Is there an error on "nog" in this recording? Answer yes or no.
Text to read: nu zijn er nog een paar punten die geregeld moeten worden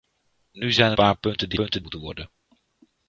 yes